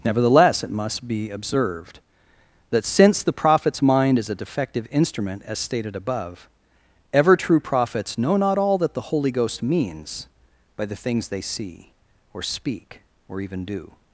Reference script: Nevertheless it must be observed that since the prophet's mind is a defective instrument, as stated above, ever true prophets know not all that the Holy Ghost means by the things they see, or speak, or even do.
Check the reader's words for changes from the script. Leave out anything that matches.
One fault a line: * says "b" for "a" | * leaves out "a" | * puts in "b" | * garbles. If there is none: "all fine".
all fine